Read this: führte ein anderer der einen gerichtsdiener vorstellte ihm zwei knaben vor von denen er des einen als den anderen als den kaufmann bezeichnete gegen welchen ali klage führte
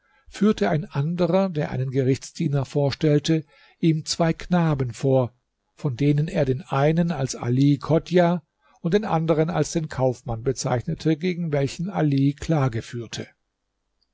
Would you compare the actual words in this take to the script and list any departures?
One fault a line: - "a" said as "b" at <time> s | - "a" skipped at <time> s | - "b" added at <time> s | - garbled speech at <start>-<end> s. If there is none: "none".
- "des" said as "den" at 6.4 s
- "ali chodjah und" added at 7.3 s